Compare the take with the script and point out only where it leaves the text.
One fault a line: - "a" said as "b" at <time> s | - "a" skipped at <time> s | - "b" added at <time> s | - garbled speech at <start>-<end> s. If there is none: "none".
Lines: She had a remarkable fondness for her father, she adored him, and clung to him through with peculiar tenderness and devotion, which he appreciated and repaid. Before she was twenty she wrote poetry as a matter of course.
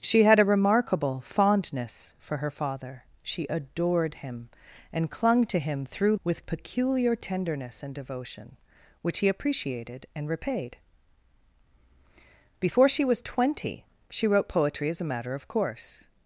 none